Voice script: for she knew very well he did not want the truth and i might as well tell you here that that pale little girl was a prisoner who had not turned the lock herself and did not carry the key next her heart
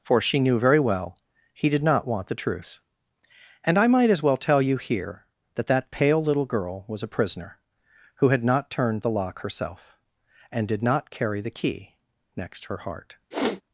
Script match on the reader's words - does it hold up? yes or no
yes